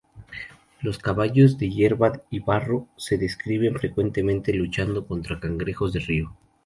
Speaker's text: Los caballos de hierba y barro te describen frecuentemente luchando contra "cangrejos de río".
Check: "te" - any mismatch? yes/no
yes